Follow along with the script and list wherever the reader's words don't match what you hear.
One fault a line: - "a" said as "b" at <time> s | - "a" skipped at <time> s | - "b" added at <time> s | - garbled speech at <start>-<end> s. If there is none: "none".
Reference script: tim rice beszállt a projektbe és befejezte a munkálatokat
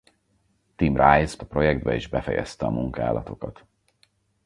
- "beszállt" skipped at 1.4 s